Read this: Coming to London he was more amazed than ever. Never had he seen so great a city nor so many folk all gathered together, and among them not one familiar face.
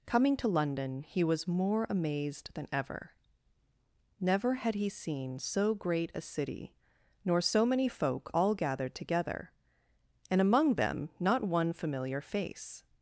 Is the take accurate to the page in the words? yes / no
yes